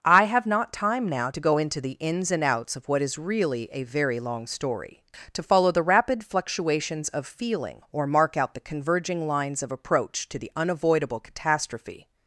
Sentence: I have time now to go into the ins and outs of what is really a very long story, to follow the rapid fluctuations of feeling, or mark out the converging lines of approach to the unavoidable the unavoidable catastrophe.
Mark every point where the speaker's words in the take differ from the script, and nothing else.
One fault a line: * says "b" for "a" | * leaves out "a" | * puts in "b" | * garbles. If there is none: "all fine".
* puts in "not"
* leaves out "the unavoidable"